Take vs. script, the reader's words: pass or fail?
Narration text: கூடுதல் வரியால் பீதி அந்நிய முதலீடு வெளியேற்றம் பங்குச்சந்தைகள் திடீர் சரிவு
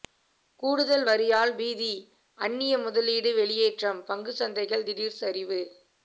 pass